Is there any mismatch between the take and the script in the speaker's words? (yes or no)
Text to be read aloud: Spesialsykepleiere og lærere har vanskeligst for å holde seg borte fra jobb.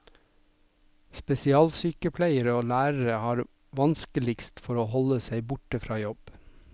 no